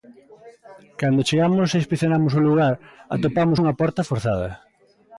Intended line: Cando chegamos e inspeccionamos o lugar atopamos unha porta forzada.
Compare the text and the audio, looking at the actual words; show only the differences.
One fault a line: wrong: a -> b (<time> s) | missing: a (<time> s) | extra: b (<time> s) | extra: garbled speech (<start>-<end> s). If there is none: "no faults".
no faults